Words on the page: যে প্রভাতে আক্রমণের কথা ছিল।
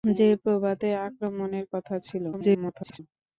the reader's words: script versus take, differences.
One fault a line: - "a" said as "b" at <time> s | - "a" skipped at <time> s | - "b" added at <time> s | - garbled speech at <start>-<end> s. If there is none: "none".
- garbled speech at 2.3-3.0 s